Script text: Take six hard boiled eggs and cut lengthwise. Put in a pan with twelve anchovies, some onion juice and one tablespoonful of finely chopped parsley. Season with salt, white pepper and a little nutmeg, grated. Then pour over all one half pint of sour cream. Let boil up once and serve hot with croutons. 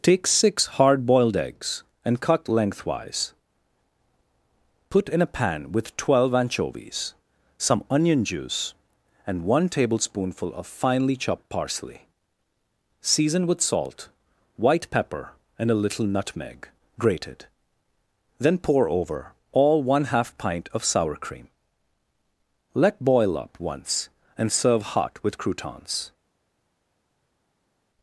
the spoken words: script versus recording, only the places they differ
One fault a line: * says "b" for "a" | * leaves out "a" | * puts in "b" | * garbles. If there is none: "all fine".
all fine